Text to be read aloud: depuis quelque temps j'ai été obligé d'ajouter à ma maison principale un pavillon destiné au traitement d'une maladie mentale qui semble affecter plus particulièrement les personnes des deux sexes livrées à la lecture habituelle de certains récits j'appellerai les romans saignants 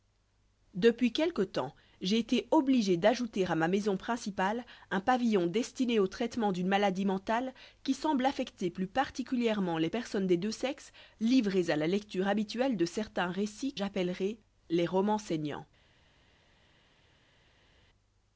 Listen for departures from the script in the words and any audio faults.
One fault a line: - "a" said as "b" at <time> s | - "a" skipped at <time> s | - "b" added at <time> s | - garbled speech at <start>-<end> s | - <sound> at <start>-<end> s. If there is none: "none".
none